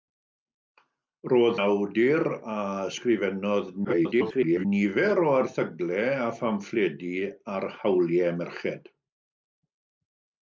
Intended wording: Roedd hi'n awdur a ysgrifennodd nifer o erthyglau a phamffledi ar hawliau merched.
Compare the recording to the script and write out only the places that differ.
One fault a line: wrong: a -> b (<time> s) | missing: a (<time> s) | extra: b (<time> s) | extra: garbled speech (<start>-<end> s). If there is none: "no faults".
missing: hi'n (1.6 s)
extra: garbled speech (3.8-4.7 s)